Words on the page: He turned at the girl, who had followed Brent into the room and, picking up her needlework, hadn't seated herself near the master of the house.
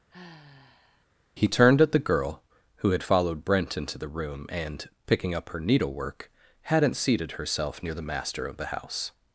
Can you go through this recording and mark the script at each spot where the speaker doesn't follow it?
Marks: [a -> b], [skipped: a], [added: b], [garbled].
He turned at the girl, who had followed Brent into the room and, picking up her needlework, hadn't seated herself near the master of the house.